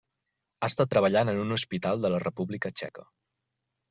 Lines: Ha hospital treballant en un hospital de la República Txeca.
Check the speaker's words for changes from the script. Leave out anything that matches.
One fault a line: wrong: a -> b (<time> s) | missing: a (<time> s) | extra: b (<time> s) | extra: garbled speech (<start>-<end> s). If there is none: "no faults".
wrong: hospital -> estat (0.7 s)